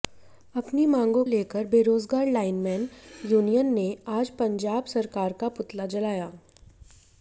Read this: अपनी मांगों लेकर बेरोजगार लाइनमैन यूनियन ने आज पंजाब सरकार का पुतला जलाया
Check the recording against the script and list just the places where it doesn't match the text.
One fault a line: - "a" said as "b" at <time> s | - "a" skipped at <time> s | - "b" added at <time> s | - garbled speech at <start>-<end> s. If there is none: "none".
none